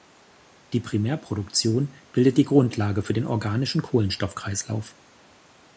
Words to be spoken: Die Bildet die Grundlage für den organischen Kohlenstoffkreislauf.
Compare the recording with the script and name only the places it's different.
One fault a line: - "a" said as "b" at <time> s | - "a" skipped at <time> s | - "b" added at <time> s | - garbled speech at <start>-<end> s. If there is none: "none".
- "Primärproduktion" added at 0.8 s